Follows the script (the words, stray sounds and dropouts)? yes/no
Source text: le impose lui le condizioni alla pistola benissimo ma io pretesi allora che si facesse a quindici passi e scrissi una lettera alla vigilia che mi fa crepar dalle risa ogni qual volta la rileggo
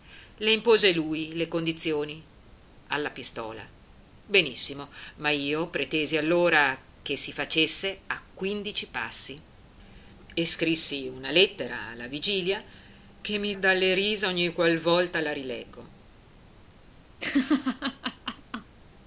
no